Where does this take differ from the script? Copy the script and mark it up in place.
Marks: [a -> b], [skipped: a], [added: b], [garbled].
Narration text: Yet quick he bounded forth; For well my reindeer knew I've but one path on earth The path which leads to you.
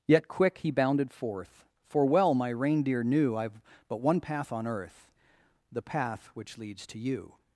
Yet quick he bounded forth; For well my reindeer knew I've but one path on earth The path which leads to you.